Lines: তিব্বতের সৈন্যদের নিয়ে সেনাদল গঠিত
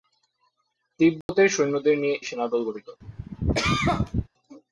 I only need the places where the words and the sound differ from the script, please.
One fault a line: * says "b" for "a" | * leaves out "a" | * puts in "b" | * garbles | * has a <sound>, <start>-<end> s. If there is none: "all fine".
* has a dropout, 1.2-1.3 s
* has a cough, 3.0-4.3 s